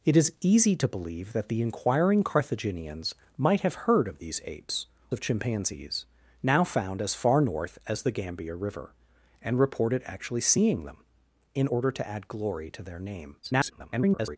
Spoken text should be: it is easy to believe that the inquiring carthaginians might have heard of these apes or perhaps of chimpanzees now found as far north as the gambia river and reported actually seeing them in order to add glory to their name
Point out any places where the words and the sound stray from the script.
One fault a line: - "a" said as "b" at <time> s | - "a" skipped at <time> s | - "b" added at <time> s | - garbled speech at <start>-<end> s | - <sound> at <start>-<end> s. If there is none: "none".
- "or perhaps" skipped at 4.9 s
- garbled speech at 13.4-14.4 s